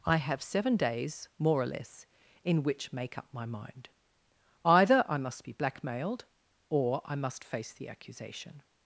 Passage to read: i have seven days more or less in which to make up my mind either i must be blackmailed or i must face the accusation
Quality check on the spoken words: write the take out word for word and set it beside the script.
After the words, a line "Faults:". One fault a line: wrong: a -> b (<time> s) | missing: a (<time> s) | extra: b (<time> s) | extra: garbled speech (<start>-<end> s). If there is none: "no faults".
i have seven days more or less in which make up my mind either i must be blackmailed or i must face the accusation
Faults:
missing: to (2.9 s)